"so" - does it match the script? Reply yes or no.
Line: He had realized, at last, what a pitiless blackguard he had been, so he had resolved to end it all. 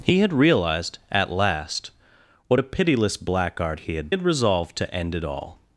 no